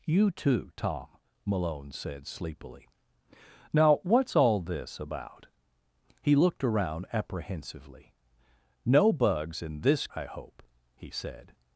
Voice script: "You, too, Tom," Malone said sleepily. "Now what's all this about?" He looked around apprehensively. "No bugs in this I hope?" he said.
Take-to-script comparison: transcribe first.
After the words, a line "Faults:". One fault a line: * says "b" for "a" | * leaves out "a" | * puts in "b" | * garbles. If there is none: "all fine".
"You, too, Tom," Malone said sleepily. "Now what's all this about?" He looked around apprehensively. "No bugs in this I hope?" he said.
Faults:
all fine